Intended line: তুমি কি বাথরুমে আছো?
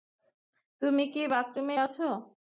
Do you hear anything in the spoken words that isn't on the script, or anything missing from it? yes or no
no